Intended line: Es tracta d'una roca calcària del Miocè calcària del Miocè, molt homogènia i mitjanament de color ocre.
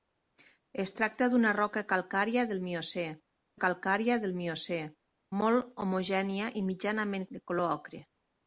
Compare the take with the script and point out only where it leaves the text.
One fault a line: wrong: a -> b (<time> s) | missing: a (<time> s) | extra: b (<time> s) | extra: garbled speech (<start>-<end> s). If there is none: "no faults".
no faults